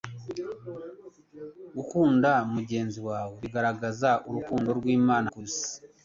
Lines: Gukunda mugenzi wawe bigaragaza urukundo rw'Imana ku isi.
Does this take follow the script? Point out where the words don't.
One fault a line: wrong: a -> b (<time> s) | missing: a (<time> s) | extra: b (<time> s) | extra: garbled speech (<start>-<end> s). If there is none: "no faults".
no faults